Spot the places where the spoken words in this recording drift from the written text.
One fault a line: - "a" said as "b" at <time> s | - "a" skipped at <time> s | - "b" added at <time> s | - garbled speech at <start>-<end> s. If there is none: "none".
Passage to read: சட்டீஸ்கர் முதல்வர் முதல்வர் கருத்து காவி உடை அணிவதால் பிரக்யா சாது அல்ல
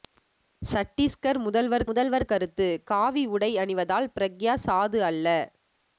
none